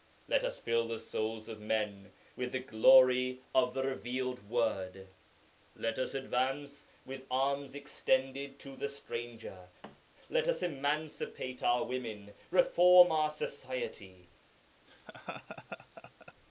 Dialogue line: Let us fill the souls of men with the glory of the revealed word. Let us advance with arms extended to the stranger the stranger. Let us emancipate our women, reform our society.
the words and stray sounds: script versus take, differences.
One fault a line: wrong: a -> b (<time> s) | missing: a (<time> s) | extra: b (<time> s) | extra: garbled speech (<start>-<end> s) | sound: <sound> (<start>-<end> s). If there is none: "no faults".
missing: the stranger (9.7 s)
sound: thud (9.8-10.0 s)
sound: laugh (14.9-16.3 s)